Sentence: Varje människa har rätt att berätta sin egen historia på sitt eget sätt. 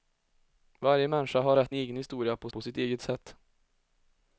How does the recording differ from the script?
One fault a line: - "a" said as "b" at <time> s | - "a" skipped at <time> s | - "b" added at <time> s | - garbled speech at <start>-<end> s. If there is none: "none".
- "att berätta sin" skipped at 1.7 s
- "på" added at 2.5 s